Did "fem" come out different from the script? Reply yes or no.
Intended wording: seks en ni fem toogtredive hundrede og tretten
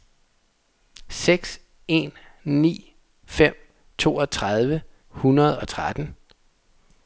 no